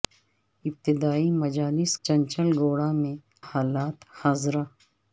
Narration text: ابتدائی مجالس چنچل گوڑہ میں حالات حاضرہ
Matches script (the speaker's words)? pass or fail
pass